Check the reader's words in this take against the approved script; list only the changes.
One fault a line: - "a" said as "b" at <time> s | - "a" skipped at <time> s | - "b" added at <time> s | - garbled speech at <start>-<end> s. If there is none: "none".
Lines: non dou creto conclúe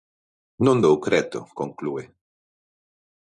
none